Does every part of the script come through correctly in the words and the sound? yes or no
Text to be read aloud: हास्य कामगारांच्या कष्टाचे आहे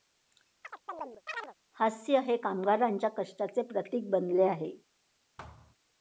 no